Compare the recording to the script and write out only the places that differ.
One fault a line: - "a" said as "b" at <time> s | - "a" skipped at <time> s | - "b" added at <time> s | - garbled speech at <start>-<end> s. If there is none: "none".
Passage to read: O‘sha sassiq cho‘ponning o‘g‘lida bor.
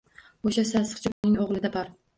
none